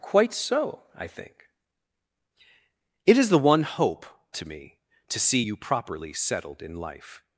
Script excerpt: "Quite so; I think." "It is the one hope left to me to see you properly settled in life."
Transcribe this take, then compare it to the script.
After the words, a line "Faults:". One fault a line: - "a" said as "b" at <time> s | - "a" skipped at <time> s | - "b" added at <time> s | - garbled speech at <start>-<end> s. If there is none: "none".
"Quite so; I think." "It is the one hope to me to see you properly settled in life."
Faults:
- "left" skipped at 4.1 s